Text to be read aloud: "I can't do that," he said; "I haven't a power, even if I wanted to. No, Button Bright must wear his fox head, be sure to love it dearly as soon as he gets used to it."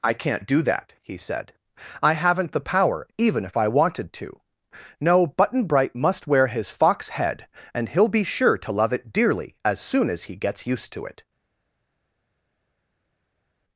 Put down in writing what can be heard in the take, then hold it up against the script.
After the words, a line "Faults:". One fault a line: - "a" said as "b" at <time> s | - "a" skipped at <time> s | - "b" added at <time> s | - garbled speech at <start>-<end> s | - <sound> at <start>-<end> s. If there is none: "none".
"I can't do that," he said; "I haven't the power, even if I wanted to. No, Button Bright must wear his fox head, and he'll be sure to love it dearly as soon as he gets used to it."
Faults:
- "a" said as "the" at 2.5 s
- "and he'll" added at 7.7 s